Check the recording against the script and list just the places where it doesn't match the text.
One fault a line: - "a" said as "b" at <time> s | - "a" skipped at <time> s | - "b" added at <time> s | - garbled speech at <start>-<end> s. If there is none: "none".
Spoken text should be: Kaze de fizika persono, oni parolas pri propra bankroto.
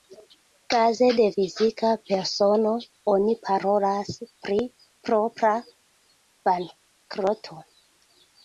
none